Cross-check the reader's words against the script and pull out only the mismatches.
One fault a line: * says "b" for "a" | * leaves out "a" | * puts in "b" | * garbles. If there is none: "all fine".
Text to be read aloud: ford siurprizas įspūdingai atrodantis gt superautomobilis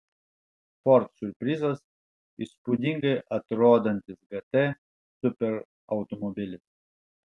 all fine